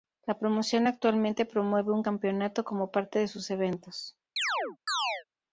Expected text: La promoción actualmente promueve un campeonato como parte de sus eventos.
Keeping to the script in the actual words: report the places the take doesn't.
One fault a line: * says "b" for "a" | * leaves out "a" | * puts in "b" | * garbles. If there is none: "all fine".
all fine